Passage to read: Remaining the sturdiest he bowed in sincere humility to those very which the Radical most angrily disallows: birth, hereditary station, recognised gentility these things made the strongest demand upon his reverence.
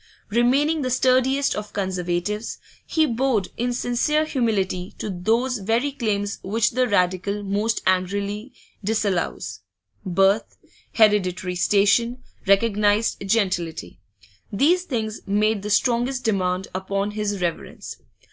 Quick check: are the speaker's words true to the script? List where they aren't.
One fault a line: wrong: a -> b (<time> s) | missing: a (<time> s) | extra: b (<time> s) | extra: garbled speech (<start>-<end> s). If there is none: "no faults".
extra: of Conservatives (1.6 s)
extra: claims (5.9 s)